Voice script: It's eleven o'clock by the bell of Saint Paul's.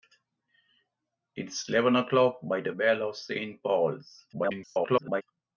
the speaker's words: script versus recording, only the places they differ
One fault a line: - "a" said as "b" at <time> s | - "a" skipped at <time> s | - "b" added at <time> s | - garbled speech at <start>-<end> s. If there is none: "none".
- garbled speech at 4.3-5.2 s